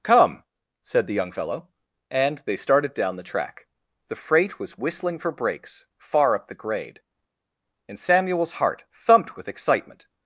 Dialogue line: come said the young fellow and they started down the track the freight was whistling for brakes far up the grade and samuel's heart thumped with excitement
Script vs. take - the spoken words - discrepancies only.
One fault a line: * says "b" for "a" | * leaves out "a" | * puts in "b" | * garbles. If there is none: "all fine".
all fine